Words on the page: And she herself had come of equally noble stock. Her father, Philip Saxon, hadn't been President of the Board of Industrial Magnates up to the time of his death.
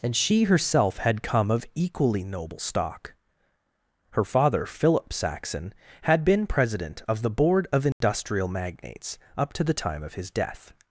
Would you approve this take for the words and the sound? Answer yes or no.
no